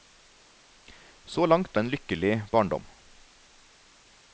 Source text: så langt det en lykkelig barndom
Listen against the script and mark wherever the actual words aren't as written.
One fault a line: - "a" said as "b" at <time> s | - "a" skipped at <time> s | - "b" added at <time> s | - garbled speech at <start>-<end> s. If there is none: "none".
none